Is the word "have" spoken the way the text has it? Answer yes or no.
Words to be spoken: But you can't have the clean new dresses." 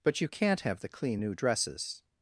yes